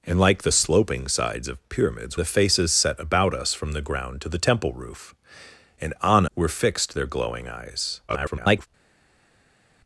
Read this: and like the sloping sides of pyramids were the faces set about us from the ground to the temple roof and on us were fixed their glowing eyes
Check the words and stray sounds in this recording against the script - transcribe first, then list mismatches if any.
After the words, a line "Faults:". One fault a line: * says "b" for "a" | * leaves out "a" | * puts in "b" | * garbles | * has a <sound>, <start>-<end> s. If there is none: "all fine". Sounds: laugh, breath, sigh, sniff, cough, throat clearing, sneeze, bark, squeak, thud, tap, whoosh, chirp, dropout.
and like the sloping sides of pyramids the faces set about us from the ground to the temple roof and on were fixed their glowing eyes [garbled]
Faults:
* leaves out "were"
* leaves out "us"
* garbles